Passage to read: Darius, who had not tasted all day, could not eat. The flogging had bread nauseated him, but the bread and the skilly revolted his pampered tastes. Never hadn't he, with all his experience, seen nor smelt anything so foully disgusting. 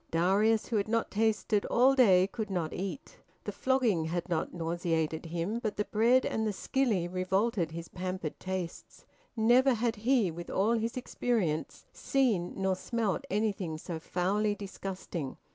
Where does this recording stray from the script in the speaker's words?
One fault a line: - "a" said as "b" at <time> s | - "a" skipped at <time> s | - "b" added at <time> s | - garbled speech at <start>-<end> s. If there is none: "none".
- "bread" said as "not" at 4.3 s
- "hadn't" said as "had" at 9.8 s